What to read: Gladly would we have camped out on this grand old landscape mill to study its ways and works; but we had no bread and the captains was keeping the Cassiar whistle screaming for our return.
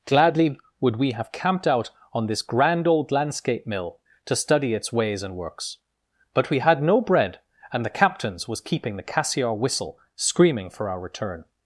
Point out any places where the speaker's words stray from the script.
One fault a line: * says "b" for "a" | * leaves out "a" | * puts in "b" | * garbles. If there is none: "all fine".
all fine